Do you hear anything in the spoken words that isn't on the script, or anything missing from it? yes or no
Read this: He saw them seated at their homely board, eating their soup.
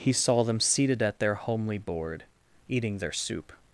no